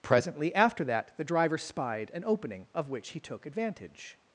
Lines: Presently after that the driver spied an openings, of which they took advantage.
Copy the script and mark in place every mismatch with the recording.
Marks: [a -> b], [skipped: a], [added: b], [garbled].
Presently after that the driver spied an [openings, -> opening] of which [they -> he] took advantage.